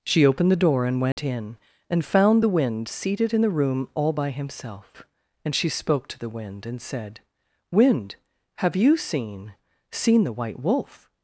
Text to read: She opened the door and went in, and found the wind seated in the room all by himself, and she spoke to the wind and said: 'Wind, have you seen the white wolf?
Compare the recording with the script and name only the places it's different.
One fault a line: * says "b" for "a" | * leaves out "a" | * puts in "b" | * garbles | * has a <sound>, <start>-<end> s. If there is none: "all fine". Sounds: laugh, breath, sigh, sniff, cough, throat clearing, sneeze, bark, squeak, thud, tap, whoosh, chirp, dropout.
* has a dropout, 1.1-1.2 s
* puts in "seen"